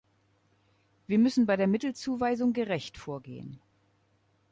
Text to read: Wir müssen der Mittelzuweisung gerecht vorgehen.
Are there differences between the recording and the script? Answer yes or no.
yes